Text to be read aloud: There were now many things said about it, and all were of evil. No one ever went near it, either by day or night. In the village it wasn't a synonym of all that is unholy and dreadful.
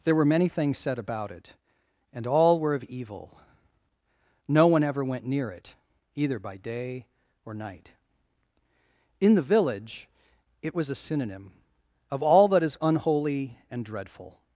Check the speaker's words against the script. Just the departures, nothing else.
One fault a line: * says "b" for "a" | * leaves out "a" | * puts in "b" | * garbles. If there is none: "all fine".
* leaves out "now"
* says "was" for "wasn't"